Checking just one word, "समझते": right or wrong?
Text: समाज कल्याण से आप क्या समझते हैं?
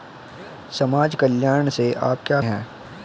wrong